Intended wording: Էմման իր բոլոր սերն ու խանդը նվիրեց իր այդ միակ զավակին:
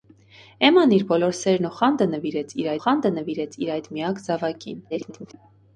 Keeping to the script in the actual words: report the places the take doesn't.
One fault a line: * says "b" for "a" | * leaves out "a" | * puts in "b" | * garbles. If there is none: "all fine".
* puts in "խանդը նվիրեց իր"
* garbles